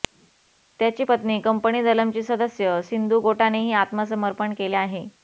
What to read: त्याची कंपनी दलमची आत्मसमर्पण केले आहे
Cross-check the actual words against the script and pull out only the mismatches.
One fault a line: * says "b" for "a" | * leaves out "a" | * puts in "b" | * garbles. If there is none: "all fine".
* puts in "पत्नी"
* puts in "सदस्य सिंधू गोटानेही"